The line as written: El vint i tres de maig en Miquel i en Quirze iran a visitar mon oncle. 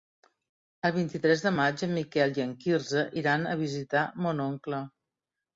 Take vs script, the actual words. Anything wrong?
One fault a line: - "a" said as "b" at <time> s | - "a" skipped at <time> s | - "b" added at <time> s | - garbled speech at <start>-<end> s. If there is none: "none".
none